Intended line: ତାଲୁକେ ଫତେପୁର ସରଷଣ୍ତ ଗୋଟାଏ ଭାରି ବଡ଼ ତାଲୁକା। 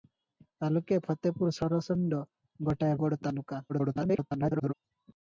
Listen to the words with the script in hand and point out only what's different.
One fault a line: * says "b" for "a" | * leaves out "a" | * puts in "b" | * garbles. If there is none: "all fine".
* leaves out "ଭାରି"
* garbles